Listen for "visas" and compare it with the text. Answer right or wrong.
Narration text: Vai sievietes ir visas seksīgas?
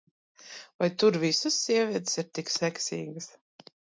wrong